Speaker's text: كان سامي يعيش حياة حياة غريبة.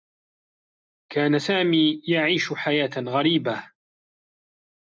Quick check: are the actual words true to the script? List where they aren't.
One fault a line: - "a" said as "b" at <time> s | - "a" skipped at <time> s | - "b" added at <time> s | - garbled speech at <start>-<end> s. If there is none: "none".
- "حياة" skipped at 2.9 s